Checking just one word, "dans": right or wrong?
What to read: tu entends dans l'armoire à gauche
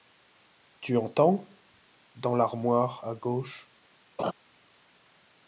right